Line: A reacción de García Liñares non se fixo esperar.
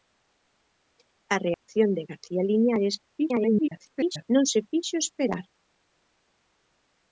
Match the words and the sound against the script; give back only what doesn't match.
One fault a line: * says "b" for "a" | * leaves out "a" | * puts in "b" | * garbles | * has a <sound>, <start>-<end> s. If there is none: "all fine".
* has a dropout, 1.5-1.7 s
* garbles